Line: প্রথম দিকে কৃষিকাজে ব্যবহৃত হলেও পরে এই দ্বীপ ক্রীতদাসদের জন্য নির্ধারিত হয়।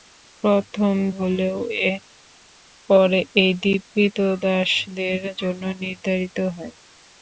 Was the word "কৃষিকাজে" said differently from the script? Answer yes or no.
yes